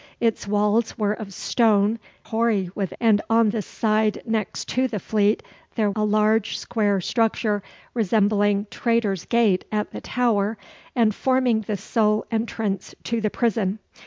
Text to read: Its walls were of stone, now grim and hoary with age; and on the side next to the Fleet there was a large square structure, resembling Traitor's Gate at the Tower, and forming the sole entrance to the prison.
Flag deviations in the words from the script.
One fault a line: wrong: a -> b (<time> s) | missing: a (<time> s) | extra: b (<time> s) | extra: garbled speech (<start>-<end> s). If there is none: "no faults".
missing: now grim and (2.0 s)
missing: age (2.9 s)
missing: was (5.9 s)